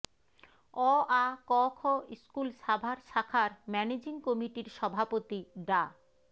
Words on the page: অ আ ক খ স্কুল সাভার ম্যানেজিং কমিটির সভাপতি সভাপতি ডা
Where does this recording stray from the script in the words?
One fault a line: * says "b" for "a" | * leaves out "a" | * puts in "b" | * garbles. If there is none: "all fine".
* puts in "শাখার"
* leaves out "সভাপতি"